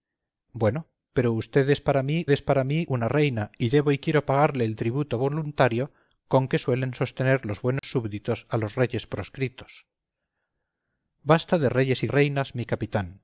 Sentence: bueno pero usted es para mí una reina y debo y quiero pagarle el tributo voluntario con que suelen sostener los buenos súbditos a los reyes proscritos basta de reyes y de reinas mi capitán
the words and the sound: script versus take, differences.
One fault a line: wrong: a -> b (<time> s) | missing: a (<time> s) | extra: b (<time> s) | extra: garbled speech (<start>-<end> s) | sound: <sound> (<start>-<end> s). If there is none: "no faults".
extra: es para mí (2.3 s)
sound: dropout (7.8-7.8 s)
missing: de (12.1 s)